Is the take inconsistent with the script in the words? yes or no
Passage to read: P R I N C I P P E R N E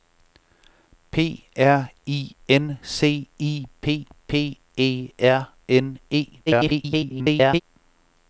yes